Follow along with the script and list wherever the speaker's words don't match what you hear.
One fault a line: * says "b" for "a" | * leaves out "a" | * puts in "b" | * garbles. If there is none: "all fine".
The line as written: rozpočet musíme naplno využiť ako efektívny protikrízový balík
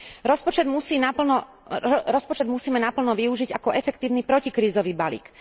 all fine